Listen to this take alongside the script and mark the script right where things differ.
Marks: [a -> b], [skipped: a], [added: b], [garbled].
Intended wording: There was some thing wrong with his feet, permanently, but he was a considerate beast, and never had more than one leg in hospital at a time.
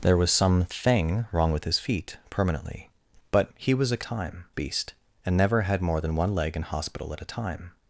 There was some thing wrong with his feet, permanently, but he was a [considerate -> time] beast, and never had more than one leg in hospital at a time.